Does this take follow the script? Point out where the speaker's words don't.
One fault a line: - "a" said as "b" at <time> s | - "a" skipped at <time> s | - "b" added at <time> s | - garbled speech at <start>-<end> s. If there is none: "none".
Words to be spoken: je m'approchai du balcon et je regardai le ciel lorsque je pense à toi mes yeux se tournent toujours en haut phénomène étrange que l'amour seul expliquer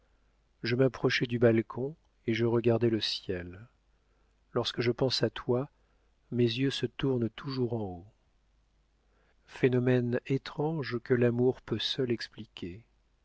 - "peut" added at 11.6 s